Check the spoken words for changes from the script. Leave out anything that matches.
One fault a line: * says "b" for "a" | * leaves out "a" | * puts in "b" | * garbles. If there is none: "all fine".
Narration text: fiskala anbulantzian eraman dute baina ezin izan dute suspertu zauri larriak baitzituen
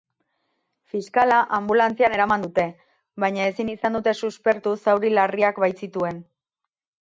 all fine